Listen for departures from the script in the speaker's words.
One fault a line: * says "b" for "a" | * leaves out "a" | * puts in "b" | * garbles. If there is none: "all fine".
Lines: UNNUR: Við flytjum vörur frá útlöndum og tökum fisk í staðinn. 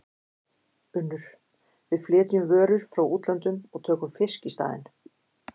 all fine